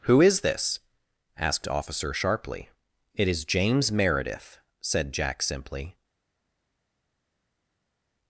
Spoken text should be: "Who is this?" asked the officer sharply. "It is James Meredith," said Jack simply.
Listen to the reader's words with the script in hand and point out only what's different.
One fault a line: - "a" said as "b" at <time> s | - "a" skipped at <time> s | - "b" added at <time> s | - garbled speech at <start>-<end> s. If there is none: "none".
- "the" skipped at 1.7 s